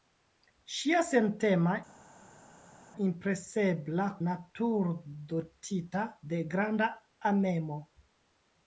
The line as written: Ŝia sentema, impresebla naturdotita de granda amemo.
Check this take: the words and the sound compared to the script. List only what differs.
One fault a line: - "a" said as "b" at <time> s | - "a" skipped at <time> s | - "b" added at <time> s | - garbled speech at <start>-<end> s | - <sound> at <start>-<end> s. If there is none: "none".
none